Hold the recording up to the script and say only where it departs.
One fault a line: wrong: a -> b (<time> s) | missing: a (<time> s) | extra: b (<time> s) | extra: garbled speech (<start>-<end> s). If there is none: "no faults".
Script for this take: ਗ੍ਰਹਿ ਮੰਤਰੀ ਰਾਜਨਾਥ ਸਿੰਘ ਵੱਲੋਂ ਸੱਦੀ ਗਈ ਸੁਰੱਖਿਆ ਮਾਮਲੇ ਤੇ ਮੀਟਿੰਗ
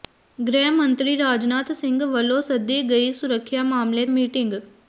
missing: ਤੇ (4.0 s)